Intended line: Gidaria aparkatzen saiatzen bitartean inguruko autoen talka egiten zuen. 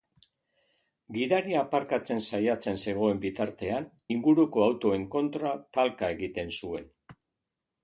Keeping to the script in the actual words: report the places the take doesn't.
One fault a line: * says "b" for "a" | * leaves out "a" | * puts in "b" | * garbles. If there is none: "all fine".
* puts in "zegoen"
* puts in "kontra"